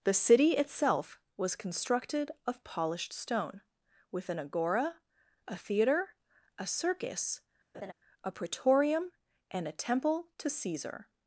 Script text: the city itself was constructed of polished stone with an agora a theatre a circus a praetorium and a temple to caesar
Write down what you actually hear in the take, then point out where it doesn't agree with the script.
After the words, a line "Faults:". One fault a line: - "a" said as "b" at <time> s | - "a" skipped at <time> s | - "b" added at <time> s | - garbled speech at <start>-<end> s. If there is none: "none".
the city itself was constructed of polished stone with an agora a theatre a circus a praetorium and a temple to caesar
Faults:
none